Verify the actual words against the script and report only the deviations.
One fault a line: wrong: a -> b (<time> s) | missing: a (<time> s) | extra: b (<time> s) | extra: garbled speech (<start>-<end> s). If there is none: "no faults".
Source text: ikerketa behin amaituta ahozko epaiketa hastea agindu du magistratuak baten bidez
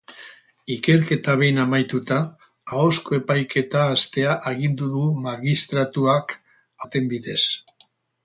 no faults